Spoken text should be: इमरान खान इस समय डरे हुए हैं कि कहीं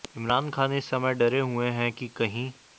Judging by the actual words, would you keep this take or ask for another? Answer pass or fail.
pass